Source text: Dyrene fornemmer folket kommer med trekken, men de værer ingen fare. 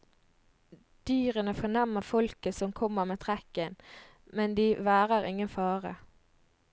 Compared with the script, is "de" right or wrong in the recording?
right